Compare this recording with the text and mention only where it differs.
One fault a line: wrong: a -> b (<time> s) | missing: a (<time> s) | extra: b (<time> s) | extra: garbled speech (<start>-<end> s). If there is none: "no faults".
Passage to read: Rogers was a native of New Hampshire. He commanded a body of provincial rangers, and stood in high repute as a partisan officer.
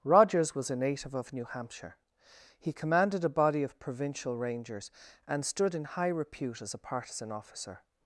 no faults